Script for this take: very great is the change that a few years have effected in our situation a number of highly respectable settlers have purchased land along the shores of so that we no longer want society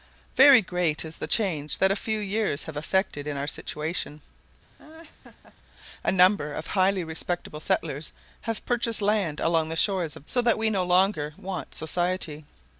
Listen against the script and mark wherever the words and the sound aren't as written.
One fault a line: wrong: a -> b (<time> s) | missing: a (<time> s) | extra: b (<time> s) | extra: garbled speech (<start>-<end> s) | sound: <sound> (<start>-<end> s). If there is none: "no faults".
sound: laugh (4.8-5.6 s)